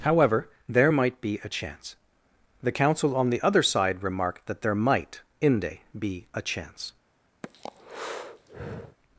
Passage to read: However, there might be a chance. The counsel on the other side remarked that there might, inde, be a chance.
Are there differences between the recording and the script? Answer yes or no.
no